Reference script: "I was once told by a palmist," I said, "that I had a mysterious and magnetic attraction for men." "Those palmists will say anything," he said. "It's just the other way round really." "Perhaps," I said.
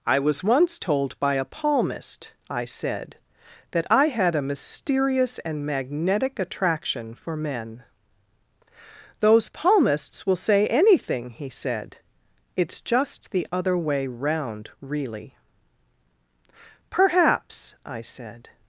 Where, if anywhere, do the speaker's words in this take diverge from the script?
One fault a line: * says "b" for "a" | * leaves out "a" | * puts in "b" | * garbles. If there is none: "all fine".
all fine